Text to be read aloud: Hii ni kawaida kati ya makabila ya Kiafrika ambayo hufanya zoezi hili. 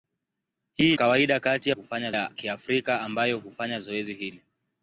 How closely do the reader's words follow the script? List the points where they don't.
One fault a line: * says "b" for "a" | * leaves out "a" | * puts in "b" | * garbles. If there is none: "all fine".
* leaves out "ni"
* says "hufanya" for "makabila"